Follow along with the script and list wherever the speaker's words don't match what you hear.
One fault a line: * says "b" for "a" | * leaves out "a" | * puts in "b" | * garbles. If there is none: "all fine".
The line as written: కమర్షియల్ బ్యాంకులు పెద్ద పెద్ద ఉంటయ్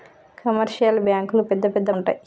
all fine